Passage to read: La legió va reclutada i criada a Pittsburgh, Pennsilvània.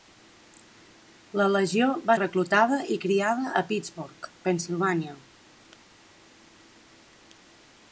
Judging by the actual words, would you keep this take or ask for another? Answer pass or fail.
pass